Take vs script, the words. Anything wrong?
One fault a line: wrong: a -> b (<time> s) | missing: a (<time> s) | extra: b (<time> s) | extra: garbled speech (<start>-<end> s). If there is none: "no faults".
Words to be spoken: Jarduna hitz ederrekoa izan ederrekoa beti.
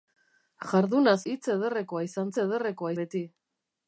no faults